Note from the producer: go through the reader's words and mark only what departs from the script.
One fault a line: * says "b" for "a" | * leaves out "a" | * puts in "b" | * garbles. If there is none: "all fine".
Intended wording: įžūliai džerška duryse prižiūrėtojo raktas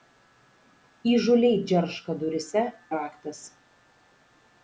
* leaves out "prižiūrėtojo"